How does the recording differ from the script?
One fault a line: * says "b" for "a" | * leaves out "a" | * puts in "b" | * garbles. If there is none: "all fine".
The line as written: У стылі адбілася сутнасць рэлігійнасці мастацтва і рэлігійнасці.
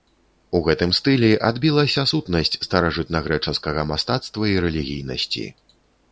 * puts in "гэтым"
* says "старажытнагрэчаскага" for "рэлігійнасці"